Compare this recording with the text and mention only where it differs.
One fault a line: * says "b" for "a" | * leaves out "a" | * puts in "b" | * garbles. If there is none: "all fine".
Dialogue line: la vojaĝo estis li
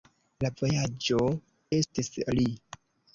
all fine